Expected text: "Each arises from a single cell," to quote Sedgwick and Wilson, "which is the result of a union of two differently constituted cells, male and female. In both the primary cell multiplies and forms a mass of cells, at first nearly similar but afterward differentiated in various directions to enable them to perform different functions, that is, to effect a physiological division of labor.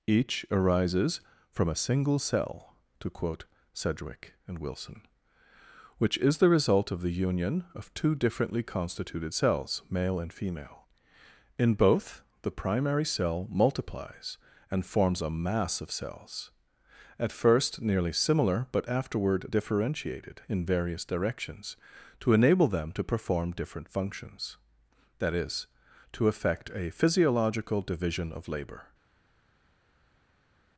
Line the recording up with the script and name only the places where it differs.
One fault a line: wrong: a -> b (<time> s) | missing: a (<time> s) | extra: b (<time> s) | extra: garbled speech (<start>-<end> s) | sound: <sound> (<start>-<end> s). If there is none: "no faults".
wrong: a -> the (7.0 s)